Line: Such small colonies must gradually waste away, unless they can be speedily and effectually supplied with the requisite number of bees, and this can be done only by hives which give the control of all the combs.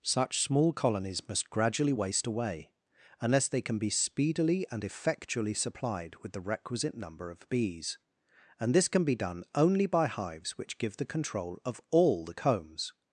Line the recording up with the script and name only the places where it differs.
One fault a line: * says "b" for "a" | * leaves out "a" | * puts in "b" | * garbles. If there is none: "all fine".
all fine